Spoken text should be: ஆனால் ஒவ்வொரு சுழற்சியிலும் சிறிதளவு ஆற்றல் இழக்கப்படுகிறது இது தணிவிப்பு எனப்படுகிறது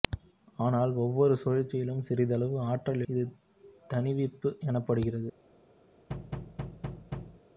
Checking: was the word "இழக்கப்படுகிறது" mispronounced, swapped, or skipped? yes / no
yes